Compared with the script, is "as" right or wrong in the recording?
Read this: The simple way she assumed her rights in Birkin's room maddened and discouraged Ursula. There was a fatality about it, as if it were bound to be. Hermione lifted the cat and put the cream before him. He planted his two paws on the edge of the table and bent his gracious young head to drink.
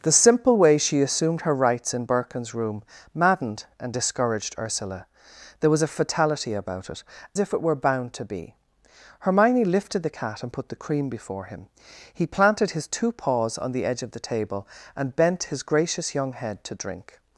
wrong